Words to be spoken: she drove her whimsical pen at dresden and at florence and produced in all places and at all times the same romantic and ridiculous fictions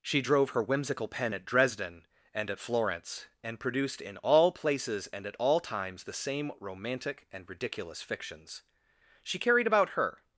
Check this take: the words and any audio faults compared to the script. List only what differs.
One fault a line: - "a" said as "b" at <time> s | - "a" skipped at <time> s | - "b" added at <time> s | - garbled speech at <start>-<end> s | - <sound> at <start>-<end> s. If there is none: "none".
- "she carried about her" added at 9.3 s